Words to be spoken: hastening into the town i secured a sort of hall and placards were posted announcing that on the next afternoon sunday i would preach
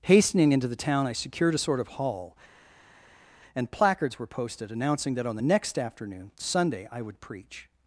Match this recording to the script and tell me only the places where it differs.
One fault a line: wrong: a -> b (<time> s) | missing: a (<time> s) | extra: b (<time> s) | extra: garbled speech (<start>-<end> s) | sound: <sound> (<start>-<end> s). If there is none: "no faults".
no faults